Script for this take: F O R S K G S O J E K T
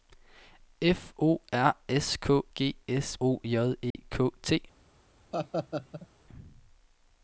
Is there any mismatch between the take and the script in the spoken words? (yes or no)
no